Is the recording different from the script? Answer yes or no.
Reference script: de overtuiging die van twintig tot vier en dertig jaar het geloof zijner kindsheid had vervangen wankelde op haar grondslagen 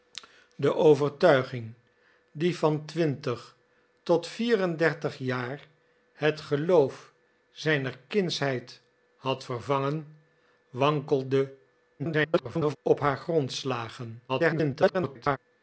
yes